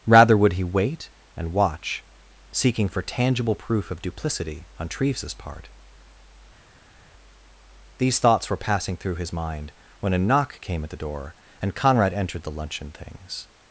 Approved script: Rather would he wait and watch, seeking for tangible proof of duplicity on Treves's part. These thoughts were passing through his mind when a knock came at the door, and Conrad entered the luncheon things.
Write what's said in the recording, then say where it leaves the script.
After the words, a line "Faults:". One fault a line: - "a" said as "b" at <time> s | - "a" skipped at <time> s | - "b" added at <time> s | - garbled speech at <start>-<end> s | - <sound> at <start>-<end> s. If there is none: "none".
Rather would he wait and watch, seeking for tangible proof of duplicity on Treves's part. These thoughts were passing through his mind when a knock came at the door, and Conrad entered the luncheon things.
Faults:
none